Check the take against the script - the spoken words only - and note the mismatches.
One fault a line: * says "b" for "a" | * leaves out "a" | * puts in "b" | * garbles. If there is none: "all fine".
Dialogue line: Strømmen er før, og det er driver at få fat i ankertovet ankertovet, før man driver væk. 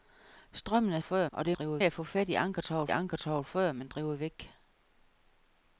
all fine